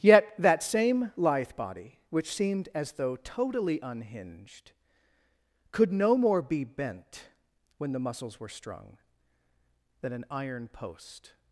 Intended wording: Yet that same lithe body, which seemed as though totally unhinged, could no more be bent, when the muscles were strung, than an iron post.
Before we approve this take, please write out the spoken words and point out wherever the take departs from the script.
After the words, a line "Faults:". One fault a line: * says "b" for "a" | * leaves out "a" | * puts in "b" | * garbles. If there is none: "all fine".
Yet that same lithe body, which seemed as though totally unhinged, could no more be bent, when the muscles were strung, than an iron post.
Faults:
all fine